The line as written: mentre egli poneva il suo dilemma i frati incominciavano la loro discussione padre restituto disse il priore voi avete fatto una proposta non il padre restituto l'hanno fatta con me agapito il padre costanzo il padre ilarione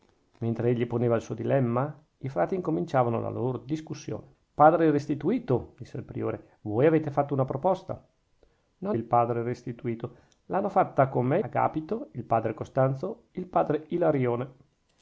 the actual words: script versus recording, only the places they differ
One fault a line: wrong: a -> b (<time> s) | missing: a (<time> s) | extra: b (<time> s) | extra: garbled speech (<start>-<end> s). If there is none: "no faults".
no faults